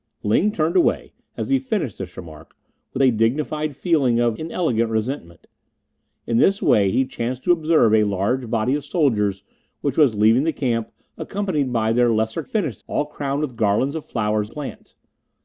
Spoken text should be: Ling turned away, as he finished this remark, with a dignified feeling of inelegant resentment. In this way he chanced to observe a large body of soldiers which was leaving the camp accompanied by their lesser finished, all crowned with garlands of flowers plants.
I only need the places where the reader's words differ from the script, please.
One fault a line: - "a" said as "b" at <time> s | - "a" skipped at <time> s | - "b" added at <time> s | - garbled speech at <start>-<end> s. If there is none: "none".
none